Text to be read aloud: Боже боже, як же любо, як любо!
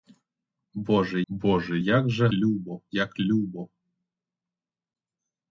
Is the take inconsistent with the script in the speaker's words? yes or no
no